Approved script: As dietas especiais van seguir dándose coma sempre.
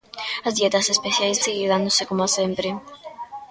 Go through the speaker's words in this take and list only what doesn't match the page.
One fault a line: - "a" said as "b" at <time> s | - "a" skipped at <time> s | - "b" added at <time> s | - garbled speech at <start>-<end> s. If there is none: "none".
- "van" skipped at 1.4 s